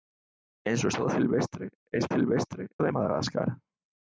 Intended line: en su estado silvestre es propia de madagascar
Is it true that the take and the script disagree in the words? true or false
true